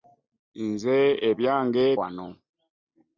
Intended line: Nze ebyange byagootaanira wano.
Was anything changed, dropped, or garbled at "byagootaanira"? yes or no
yes